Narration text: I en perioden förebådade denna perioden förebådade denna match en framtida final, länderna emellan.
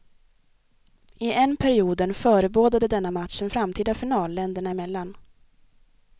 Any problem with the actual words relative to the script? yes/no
yes